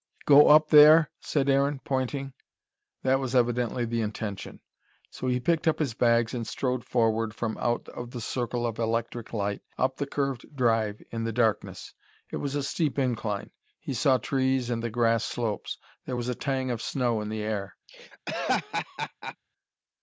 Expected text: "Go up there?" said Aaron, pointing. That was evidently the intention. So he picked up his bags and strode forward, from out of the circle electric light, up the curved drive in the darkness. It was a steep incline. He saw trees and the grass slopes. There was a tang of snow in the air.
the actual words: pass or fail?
fail